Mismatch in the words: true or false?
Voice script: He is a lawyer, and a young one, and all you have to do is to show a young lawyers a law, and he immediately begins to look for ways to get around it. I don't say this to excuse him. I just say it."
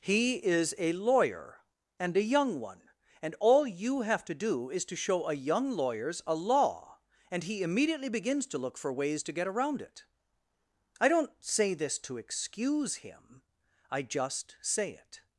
false